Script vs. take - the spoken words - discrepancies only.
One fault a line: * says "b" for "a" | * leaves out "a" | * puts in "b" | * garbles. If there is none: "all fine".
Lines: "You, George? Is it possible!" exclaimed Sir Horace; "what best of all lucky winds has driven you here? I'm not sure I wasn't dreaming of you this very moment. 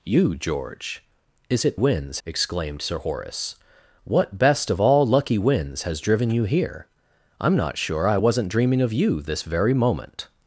* says "winds" for "possible"